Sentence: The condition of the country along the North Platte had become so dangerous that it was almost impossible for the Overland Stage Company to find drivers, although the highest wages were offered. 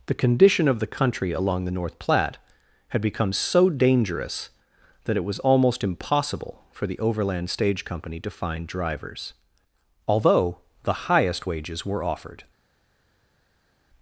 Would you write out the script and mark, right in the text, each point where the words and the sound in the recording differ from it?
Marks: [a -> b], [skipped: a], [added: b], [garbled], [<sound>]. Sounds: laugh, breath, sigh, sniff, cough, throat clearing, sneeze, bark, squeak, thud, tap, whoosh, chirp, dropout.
The condition of the country along the North Platte had become so dangerous that it was almost impossible for the Overland Stage Company to find drivers, although the highest wages were offered.